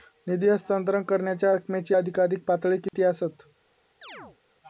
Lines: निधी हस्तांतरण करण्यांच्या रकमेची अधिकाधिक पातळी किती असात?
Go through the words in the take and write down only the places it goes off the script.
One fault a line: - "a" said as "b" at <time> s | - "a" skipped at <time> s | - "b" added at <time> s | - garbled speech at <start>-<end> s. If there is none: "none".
none